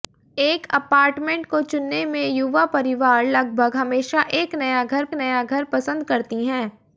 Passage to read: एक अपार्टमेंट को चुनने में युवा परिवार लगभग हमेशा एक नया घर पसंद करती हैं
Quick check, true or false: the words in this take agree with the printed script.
false